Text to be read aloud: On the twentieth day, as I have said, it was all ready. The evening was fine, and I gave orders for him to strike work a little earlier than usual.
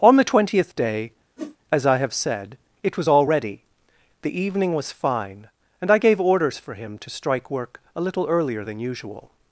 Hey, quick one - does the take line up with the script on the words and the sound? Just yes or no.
no